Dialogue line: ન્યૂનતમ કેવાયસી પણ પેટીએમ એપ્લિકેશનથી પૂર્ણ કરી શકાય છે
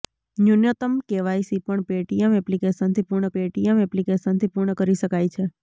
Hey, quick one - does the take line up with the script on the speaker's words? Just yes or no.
no